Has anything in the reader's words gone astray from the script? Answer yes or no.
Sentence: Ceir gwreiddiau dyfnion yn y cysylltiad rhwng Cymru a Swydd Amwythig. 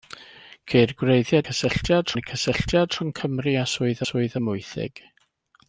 yes